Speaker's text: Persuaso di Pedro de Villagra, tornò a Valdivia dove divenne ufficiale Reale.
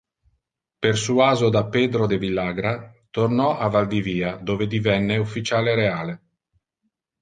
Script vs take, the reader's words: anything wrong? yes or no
yes